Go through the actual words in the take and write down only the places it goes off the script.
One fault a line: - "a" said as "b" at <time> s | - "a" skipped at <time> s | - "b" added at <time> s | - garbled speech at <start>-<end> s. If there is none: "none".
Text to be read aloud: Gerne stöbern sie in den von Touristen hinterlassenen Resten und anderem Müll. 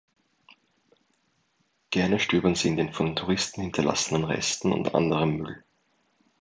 none